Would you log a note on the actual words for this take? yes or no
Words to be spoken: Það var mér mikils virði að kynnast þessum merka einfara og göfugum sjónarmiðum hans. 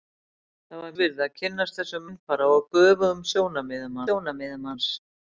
yes